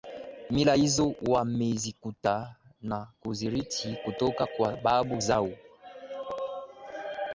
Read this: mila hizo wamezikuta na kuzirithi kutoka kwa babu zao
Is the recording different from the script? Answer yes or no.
no